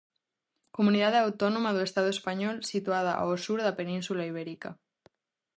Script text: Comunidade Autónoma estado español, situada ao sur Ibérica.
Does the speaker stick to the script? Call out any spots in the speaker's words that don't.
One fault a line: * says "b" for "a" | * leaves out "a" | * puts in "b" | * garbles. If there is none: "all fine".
* puts in "do"
* puts in "da Península"